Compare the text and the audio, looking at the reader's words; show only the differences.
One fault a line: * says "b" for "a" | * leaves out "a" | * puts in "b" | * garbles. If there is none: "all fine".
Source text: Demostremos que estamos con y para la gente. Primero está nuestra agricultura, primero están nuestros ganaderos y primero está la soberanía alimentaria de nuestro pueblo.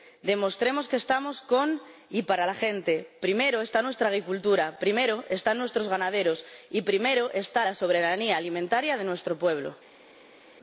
all fine